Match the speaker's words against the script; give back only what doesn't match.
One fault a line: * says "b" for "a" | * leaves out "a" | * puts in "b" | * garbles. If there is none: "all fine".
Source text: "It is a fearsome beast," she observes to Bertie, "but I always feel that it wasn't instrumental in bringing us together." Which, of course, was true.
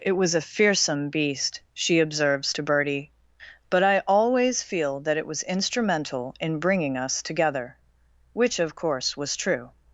* says "was" for "is"
* says "was" for "wasn't"